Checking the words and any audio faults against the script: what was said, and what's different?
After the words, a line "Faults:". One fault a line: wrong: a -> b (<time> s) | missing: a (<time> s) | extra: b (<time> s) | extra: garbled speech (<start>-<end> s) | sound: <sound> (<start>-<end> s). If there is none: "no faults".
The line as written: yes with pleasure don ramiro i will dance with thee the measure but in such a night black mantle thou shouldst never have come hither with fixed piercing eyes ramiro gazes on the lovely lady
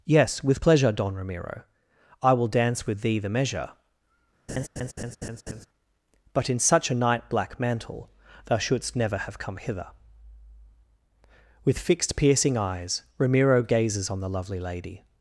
yes with pleasure don ramiro i will dance with thee the measure but in such a night black mantle thou shouldst never have come hither with fixed piercing eyes ramiro gazes on the lovely lady
Faults:
sound: laugh (4.5-5.7 s)